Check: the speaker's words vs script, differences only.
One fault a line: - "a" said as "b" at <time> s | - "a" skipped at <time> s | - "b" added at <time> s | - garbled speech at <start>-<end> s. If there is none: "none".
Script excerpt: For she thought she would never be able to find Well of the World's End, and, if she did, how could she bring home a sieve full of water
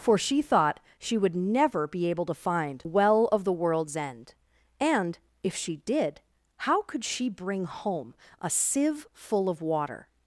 none